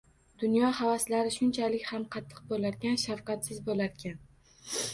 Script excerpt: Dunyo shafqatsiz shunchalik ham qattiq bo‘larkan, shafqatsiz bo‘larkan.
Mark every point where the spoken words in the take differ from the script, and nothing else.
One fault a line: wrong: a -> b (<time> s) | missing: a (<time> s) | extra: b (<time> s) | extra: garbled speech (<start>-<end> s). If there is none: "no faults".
wrong: shafqatsiz -> havaslari (0.8 s)